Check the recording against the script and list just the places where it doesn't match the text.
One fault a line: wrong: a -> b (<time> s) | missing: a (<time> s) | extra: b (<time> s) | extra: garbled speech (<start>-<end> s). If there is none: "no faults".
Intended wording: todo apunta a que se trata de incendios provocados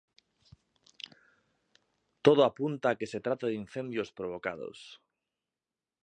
no faults